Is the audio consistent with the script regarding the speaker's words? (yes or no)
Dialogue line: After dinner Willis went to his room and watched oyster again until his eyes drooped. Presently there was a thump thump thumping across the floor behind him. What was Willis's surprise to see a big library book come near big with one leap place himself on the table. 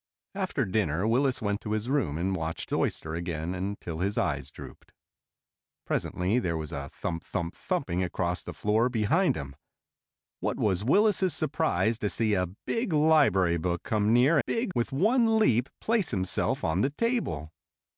yes